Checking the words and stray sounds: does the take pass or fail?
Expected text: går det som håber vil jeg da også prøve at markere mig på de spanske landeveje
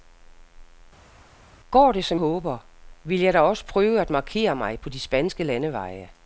pass